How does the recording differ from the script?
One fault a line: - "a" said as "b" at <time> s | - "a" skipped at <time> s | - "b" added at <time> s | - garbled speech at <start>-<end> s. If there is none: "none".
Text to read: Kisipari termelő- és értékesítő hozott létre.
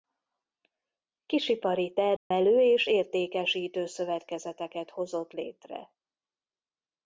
- "szövetkezeteket" added at 3.8 s